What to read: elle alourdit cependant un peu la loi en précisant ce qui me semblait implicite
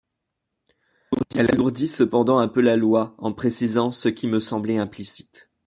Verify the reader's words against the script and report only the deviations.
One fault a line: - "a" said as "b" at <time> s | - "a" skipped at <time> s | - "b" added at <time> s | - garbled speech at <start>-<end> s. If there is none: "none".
none